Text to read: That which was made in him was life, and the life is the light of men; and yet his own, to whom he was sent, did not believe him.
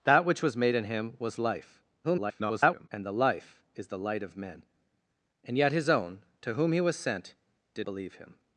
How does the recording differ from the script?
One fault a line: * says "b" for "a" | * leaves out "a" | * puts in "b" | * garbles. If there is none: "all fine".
* garbles
* leaves out "not"